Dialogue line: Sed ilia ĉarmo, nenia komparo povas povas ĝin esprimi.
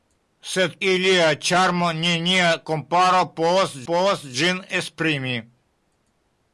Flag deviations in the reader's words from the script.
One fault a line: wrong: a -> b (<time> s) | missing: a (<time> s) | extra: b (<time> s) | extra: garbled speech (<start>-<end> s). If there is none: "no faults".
no faults